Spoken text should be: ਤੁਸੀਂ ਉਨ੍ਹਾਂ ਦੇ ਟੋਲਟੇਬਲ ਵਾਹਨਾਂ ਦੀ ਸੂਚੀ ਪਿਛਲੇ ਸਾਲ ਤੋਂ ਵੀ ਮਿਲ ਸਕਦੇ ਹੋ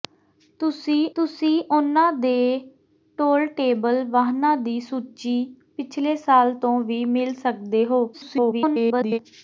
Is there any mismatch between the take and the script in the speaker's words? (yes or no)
yes